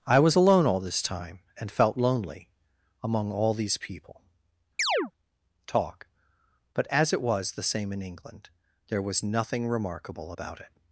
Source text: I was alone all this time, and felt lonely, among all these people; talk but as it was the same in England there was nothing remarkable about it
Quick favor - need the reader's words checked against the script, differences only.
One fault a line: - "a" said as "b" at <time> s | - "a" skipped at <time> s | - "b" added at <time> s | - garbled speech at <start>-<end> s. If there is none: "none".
none